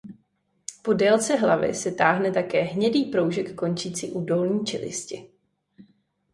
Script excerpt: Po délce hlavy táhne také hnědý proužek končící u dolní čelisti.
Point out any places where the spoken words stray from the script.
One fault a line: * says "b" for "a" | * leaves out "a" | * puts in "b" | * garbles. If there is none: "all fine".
* puts in "se"